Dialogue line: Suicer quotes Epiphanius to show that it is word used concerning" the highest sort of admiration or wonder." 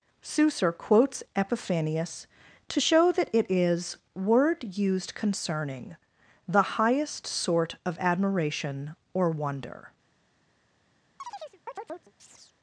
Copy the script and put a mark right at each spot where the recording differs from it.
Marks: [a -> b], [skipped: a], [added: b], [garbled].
Suicer quotes Epiphanius to show that it is word used concerning" the highest sort of admiration or wonder."